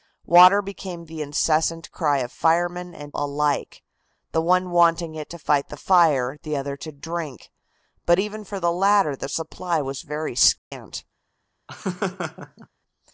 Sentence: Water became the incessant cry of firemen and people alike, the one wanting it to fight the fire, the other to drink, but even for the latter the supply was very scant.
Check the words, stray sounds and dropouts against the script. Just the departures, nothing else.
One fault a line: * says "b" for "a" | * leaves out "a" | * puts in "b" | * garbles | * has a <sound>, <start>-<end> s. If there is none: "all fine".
* leaves out "people"
* has a dropout, 10.6-10.7 s
* has a laugh, 11.7-12.7 s